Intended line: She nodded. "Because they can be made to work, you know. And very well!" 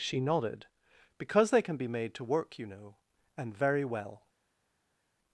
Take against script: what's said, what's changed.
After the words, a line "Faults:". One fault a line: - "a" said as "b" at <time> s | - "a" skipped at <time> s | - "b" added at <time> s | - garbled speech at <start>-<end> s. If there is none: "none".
She nodded. "Because they can be made to work, you know. And very well!"
Faults:
none